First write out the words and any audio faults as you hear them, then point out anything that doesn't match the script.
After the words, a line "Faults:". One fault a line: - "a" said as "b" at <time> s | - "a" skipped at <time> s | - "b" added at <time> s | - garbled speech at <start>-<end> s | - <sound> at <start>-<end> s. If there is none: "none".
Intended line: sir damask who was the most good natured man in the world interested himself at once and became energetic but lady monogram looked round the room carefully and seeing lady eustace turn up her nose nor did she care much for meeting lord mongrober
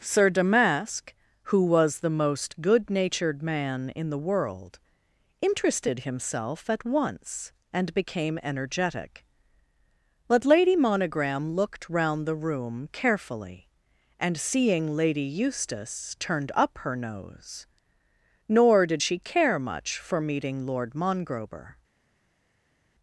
sir damask who was the most good natured man in the world interested himself at once and became energetic but lady monogram looked round the room carefully and seeing lady eustace turned up her nose nor did she care much for meeting lord mongrober
Faults:
- "turn" said as "turned" at 16.2 s